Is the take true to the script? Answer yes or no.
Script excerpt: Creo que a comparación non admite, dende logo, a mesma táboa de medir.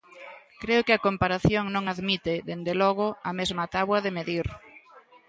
yes